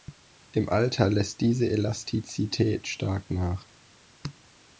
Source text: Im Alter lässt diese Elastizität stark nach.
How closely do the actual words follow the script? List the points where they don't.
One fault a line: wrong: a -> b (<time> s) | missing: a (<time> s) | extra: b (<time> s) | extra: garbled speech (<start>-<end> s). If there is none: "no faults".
no faults